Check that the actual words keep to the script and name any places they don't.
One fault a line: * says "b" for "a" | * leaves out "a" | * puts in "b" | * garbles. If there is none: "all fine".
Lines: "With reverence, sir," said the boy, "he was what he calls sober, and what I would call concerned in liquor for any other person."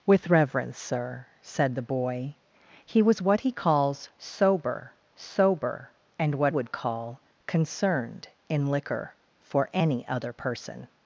* puts in "sober"
* leaves out "I"